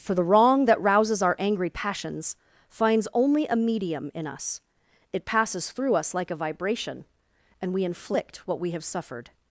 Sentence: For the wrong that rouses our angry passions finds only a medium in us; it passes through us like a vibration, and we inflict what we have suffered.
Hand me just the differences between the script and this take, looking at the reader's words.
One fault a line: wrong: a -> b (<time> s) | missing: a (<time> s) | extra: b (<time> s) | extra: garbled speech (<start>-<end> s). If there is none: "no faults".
no faults